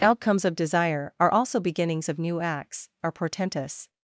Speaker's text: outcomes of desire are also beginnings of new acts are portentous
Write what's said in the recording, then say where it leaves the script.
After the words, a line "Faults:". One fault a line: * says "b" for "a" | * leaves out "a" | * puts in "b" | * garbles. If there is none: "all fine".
outcomes of desire are also beginnings of new acts are portentous
Faults:
all fine